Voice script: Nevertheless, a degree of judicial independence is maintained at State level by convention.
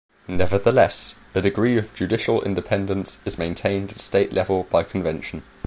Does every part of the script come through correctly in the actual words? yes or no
yes